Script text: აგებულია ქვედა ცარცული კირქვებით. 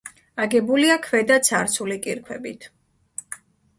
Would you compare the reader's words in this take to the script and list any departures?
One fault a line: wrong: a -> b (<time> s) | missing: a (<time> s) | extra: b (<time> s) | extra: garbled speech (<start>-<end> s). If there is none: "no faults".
no faults